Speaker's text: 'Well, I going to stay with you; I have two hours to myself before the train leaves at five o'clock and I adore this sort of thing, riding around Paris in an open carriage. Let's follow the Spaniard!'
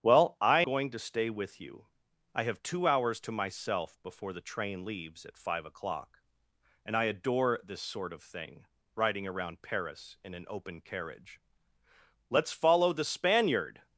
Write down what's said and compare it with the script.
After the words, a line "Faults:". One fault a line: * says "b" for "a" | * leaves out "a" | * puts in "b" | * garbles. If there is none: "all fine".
'Well, I going to stay with you; I have two hours to myself before the train leaves at five o'clock and I adore this sort of thing, riding around Paris in an open carriage. Let's follow the Spaniard!'
Faults:
all fine